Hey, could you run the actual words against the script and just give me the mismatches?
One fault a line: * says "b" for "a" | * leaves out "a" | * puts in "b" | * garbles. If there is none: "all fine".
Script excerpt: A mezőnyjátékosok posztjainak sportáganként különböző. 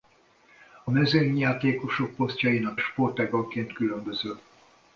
all fine